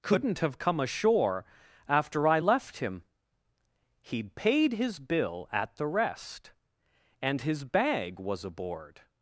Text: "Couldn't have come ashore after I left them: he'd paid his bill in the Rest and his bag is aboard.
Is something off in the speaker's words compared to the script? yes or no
yes